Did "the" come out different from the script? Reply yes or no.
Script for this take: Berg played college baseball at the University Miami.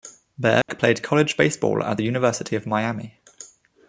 no